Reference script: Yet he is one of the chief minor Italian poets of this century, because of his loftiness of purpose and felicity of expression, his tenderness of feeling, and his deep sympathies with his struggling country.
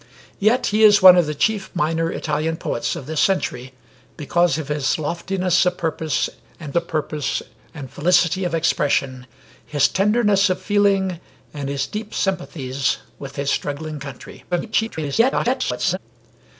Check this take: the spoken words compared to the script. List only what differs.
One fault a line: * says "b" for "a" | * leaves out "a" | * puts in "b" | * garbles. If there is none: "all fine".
* puts in "of purpose and"
* garbles